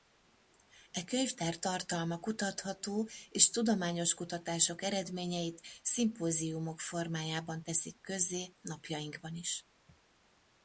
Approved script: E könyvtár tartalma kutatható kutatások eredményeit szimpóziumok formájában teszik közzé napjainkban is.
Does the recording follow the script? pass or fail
fail